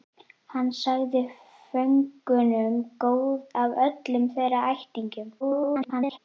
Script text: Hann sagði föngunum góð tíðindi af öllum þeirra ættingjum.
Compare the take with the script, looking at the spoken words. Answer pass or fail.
fail